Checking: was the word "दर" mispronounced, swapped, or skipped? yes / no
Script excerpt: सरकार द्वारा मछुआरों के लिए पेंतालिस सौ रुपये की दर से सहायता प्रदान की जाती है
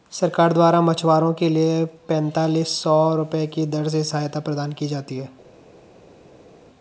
no